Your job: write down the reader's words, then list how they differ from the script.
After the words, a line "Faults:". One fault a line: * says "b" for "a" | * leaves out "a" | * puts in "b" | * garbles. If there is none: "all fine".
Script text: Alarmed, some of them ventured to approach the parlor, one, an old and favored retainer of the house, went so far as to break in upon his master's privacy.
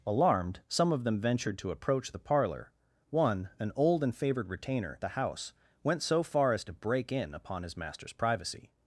Alarmed, some of them ventured to approach the parlor, one, an old and favored retainer the house, went so far as to break in upon his master's privacy.
Faults:
* leaves out "of"